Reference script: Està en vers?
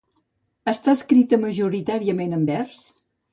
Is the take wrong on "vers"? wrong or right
right